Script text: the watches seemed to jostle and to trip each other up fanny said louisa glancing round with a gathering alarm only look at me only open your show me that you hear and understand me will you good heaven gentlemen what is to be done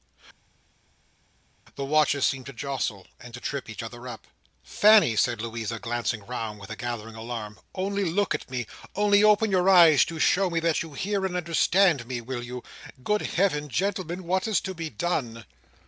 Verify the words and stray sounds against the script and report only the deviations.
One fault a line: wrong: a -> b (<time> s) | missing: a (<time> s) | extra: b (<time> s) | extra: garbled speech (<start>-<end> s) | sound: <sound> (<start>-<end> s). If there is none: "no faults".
extra: eyes to (9.7 s)